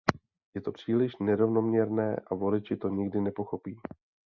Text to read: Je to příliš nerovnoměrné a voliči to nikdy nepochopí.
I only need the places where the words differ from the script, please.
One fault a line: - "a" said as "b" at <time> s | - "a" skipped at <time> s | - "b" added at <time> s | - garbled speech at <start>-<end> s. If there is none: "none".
none